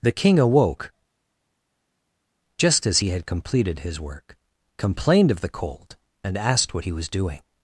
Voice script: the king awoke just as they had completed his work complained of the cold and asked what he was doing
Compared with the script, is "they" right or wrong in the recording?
wrong